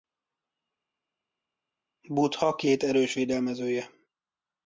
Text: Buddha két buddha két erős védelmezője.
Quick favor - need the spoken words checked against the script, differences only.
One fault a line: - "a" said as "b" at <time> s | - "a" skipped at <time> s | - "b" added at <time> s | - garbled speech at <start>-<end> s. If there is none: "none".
- "buddha két" skipped at 2.8 s